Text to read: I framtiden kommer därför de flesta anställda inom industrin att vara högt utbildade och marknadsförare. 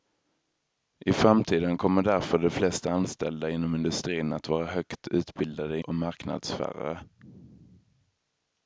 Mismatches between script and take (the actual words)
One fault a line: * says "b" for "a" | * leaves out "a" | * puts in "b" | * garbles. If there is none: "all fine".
all fine